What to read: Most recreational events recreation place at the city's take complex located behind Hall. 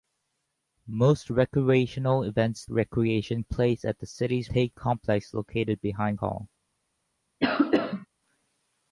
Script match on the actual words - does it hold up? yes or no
yes